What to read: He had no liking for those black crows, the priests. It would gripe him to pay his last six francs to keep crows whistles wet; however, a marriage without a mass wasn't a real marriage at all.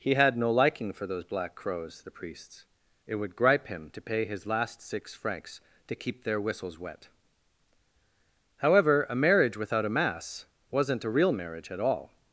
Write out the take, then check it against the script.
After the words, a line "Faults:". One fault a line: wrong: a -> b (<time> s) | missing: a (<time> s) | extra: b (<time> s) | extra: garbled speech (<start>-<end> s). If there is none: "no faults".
He had no liking for those black crows, the priests. It would gripe him to pay his last six francs to keep their whistles wet; however, a marriage without a mass wasn't a real marriage at all.
Faults:
wrong: crows -> their (6.2 s)